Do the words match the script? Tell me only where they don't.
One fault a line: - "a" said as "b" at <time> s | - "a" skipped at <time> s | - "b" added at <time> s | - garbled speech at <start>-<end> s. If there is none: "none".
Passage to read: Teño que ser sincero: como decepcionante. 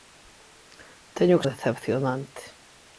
- "ser sincero como" skipped at 1.4 s